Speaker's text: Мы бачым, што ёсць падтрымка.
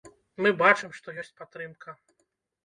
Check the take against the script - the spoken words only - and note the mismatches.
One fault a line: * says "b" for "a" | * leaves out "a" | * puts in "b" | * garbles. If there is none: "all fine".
all fine